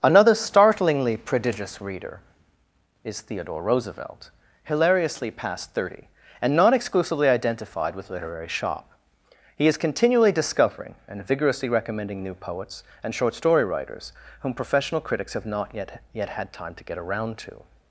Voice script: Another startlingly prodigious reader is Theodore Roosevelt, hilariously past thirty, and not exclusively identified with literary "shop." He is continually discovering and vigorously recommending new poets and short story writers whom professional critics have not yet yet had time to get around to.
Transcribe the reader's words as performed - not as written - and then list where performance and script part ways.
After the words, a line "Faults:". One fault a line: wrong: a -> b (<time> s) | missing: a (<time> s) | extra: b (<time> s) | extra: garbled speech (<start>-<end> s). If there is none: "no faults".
Another startlingly prodigious reader is Theodore Roosevelt, hilariously past thirty, and not exclusively identified with literary "shop." He is continually discovering and vigorously recommending new poets and short story writers whom professional critics have not yet yet had time to get around to.
Faults:
no faults